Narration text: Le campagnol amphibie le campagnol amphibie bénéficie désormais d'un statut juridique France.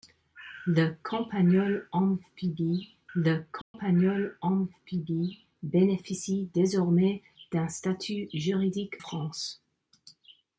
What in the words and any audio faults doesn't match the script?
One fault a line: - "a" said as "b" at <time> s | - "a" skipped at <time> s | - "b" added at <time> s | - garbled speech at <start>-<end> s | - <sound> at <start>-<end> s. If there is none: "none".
- dropout at 3.6-3.7 s